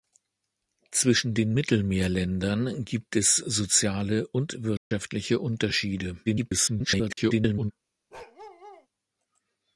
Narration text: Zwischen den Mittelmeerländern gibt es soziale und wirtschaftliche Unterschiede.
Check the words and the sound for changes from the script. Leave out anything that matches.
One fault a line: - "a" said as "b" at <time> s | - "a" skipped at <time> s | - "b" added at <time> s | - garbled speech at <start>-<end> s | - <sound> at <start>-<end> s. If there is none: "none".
- dropout at 4.8-4.9 s
- garbled speech at 6.3-7.7 s
- bark at 8.1-8.9 s